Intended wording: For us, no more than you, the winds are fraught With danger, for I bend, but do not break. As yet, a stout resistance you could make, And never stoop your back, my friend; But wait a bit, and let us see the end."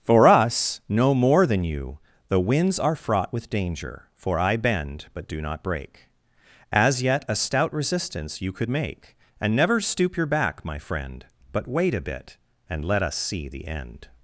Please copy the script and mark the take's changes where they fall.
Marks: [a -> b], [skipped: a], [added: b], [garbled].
For us, no more than you, the winds are fraught With danger, for I bend, but do not break. As yet, a stout resistance you could make, And never stoop your back, my friend; But wait a bit, and let us see the end."